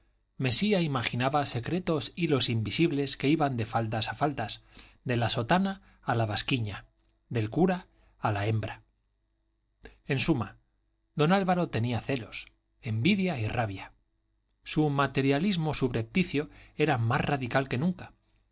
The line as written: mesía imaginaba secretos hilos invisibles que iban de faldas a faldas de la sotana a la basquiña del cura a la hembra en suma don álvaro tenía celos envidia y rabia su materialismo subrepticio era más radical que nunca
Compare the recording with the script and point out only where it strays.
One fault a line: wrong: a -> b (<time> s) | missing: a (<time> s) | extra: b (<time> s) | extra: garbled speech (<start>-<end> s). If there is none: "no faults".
no faults